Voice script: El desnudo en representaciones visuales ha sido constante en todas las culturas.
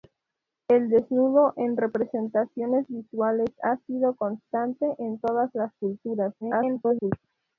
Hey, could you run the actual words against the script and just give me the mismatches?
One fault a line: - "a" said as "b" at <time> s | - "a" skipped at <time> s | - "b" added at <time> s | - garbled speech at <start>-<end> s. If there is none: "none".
- garbled speech at 6.4-7.1 s